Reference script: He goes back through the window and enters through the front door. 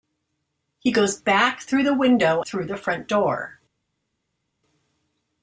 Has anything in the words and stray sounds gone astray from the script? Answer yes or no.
yes